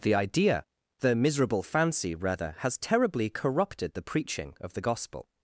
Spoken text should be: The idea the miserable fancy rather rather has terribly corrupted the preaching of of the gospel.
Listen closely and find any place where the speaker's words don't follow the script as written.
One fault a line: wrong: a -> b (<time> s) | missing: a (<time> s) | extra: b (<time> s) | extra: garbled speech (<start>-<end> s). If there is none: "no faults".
missing: rather (2.5 s)
missing: of (4.7 s)